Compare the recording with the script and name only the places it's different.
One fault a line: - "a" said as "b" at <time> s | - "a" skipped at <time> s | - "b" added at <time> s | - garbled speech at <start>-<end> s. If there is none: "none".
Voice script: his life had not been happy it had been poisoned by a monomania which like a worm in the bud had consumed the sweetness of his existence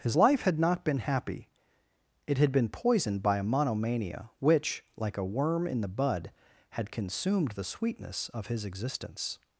none